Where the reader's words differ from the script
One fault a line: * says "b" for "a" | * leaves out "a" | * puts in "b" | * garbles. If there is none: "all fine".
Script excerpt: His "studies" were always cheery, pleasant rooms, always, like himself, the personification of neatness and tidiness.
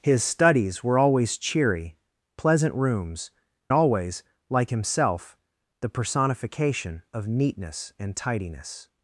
all fine